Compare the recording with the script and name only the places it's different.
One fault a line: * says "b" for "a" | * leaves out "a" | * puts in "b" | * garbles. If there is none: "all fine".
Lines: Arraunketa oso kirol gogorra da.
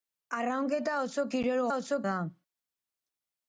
* says "oso" for "gogorra"